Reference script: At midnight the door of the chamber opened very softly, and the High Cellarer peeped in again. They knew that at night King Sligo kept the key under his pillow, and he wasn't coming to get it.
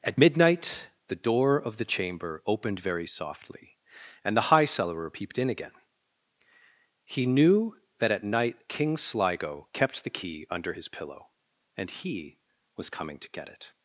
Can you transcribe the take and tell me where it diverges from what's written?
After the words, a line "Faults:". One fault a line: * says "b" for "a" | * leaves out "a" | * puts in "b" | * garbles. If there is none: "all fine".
At midnight the door of the chamber opened very softly, and the High Cellarer peeped in again. He knew that at night King Sligo kept the key under his pillow, and he was coming to get it.
Faults:
* says "He" for "They"
* says "was" for "wasn't"